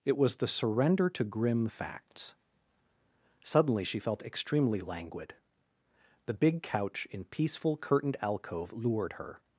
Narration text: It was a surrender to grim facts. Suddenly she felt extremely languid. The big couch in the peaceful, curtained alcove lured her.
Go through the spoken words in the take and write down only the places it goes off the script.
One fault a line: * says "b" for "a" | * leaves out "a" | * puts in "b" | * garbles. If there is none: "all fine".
* says "the" for "a"
* leaves out "the"